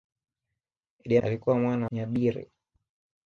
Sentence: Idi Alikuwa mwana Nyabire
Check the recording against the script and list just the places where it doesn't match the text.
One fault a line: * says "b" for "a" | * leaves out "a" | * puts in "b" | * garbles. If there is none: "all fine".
all fine